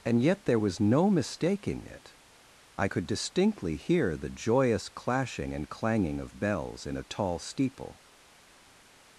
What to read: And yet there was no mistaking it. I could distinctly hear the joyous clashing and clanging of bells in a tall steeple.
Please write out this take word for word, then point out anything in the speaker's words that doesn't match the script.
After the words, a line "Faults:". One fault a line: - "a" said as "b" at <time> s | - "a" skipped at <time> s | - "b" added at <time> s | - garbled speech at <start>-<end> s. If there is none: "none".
And yet there was no mistaking it. I could distinctly hear the joyous clashing and clanging of bells in a tall steeple.
Faults:
none